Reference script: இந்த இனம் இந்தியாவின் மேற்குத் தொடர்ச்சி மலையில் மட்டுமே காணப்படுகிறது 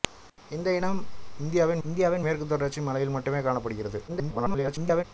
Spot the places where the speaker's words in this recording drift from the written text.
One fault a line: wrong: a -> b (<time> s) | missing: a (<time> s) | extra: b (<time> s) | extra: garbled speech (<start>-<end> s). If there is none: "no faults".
extra: இந்தியாவின் (1.8 s)
extra: garbled speech (4.1-5.0 s)